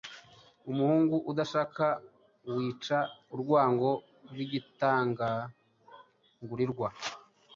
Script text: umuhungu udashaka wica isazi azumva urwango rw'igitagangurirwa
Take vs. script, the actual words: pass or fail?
fail